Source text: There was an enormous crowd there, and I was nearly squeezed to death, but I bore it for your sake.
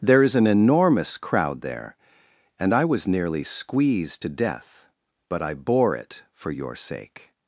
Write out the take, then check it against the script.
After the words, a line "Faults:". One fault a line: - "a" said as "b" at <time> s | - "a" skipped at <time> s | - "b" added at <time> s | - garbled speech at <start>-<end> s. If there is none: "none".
There is an enormous crowd there, and I was nearly squeezed to death, but I bore it for your sake.
Faults:
- "was" said as "is" at 0.2 s